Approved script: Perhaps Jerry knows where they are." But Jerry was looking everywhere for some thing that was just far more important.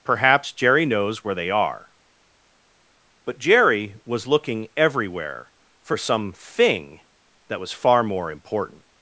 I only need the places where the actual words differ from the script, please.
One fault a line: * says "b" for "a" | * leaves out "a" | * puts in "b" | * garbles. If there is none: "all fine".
* leaves out "just"